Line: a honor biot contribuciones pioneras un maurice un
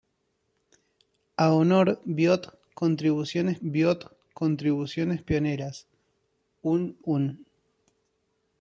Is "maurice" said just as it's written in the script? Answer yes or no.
no